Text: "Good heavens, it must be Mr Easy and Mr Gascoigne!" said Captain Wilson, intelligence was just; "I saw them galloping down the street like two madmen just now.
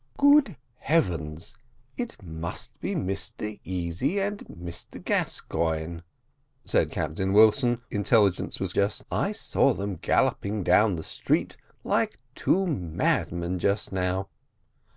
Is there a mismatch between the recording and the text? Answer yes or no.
no